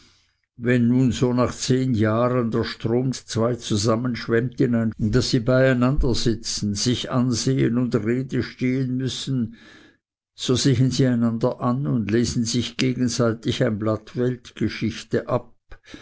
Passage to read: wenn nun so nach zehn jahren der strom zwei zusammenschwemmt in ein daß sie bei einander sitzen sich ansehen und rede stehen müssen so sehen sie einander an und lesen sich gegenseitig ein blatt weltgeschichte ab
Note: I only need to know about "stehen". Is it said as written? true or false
true